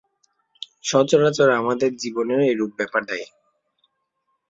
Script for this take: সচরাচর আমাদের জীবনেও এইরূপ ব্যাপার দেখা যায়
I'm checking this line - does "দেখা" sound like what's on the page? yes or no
no